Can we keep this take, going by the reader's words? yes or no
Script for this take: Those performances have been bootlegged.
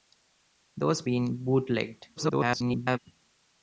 no